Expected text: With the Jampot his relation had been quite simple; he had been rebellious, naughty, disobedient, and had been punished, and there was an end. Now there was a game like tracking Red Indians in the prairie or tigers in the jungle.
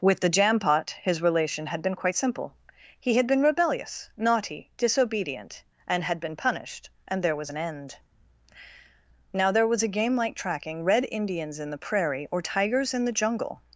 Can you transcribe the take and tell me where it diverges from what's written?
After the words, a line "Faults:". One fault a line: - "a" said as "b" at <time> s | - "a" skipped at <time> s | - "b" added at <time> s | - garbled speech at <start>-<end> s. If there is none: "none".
With the Jampot his relation had been quite simple; he had been rebellious, naughty, disobedient, and had been punished, and there was an end. Now there was a game like tracking Red Indians in the prairie or tigers in the jungle.
Faults:
none